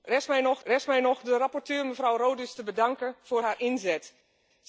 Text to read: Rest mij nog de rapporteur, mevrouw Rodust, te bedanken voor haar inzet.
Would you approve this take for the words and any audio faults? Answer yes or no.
no